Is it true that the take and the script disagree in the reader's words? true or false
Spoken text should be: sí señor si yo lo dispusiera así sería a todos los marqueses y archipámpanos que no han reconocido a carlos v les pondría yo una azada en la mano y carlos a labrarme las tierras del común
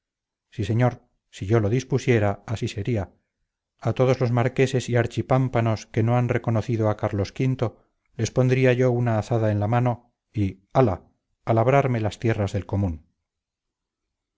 true